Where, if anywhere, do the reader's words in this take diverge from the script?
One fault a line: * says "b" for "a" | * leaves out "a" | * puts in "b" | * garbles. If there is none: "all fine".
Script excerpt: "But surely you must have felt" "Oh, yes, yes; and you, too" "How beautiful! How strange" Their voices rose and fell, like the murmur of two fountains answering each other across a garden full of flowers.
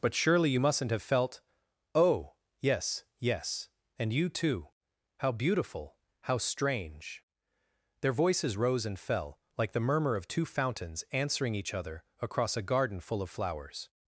* says "mustn't" for "must"